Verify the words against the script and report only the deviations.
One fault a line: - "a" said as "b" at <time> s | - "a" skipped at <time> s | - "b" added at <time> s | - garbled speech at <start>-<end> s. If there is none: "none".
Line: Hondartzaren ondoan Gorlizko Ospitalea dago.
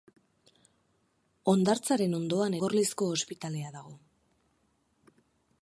none